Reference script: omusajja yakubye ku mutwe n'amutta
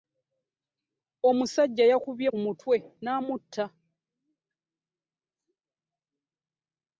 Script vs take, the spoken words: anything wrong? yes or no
no